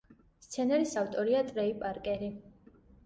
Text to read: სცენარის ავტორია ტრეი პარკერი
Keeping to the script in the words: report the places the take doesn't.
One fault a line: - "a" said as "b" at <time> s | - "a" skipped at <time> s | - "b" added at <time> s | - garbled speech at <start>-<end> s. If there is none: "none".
none